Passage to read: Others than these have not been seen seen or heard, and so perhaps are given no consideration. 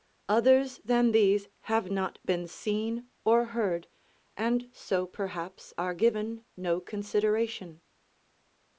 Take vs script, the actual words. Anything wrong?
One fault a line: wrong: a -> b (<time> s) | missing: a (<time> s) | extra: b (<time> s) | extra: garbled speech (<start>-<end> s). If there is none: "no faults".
missing: seen (3.1 s)